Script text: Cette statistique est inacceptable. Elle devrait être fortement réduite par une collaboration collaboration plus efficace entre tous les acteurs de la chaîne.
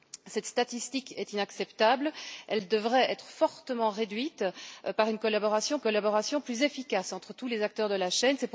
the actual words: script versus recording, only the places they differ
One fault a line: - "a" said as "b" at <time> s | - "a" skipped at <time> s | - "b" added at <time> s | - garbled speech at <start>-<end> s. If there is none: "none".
none